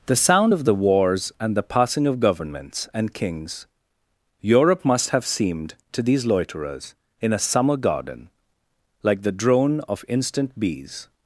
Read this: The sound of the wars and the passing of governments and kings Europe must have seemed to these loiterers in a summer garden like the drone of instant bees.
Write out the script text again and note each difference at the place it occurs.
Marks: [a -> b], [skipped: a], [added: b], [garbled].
The sound of the wars and the passing of governments and kings Europe must have seemed to these loiterers in a summer garden like the drone of instant bees.